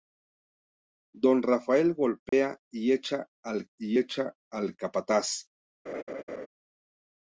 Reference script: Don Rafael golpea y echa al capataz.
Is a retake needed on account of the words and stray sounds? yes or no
yes